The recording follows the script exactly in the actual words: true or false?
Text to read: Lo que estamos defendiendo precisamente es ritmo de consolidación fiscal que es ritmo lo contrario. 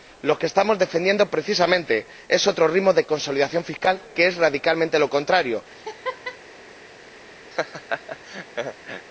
false